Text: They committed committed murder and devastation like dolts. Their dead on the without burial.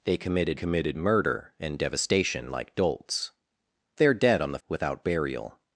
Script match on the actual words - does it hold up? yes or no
yes